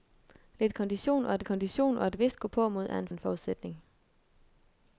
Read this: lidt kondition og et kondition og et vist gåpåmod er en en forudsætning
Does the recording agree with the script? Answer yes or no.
yes